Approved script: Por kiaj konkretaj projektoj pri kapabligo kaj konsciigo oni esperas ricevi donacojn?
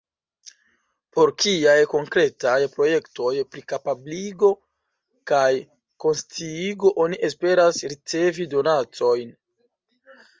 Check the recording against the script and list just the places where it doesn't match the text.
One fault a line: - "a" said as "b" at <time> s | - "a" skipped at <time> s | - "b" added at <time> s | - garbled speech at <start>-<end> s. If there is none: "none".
none